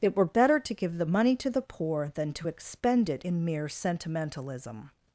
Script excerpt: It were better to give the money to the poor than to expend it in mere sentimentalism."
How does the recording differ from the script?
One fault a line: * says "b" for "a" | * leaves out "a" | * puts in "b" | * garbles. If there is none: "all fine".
all fine